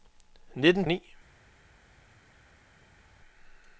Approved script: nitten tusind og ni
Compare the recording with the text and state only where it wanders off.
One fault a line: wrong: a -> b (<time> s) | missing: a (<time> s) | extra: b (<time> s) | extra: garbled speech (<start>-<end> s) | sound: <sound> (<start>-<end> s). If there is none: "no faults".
missing: tusind (0.8 s)